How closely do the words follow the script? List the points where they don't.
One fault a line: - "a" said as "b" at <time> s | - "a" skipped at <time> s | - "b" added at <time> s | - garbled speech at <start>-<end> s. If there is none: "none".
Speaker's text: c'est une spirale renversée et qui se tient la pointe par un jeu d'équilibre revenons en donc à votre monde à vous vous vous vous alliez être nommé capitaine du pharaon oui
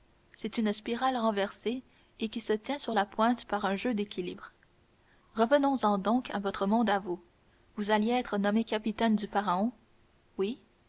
- "sur" added at 2.8 s
- "vous vous" skipped at 7.9 s